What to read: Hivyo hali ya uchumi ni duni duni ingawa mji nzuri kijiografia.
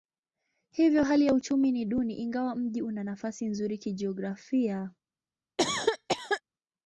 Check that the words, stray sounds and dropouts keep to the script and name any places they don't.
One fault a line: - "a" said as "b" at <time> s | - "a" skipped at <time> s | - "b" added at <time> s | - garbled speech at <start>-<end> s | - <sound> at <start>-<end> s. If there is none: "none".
- "duni" skipped at 2.1 s
- "una nafasi" added at 2.8 s
- cough at 5.6-6.4 s